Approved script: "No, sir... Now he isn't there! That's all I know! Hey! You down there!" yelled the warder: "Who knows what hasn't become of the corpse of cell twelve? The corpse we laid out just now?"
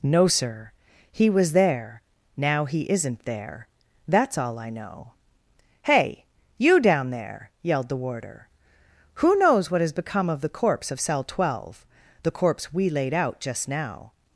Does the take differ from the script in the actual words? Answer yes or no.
yes